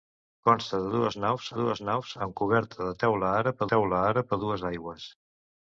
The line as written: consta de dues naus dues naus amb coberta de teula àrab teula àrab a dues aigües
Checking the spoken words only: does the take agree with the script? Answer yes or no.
yes